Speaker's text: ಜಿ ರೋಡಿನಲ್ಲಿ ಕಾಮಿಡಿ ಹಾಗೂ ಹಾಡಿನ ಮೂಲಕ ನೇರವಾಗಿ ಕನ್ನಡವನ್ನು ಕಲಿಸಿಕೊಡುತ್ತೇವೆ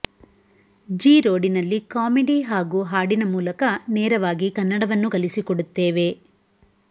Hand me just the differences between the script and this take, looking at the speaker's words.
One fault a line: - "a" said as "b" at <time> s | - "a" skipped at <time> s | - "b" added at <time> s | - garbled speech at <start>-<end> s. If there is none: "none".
none